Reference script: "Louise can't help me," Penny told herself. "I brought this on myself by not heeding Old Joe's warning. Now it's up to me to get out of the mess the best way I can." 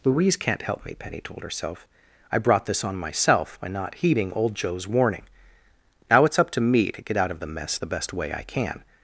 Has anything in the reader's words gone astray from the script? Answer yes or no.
no